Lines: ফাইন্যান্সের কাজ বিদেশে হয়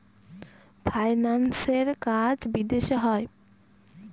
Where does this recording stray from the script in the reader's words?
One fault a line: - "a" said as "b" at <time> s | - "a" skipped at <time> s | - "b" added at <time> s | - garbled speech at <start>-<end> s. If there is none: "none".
none